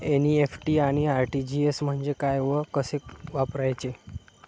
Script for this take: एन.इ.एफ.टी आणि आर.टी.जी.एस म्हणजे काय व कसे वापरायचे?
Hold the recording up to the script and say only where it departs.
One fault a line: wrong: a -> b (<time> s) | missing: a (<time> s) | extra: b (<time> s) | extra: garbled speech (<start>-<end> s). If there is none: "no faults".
no faults